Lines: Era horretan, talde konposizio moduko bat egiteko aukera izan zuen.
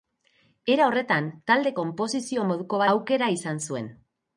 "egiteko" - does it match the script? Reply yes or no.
no